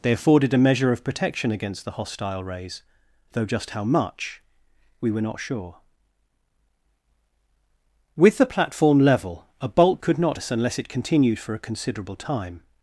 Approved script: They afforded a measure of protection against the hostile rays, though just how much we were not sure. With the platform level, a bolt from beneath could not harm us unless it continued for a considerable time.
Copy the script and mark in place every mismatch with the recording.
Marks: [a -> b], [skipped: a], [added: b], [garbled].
They afforded a measure of protection against the hostile rays, though just how much we were not sure. With the platform level, a bolt [skipped: from beneath] could not [skipped: harm] us unless it continued for a considerable time.